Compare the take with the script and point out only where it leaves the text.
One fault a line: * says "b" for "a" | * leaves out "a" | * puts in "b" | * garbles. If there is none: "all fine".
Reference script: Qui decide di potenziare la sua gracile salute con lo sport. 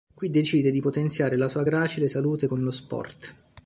all fine